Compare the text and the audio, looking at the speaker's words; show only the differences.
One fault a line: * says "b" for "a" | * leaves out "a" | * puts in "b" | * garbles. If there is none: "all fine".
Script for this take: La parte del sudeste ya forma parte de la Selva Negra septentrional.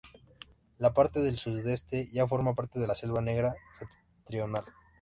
all fine